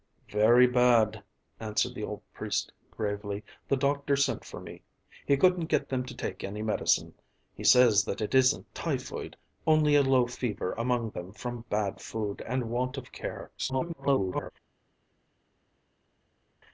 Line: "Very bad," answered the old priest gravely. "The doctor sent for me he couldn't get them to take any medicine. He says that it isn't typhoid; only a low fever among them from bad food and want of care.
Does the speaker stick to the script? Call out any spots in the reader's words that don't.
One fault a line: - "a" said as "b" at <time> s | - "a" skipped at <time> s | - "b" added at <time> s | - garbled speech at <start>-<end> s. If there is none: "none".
- garbled speech at 13.6-14.5 s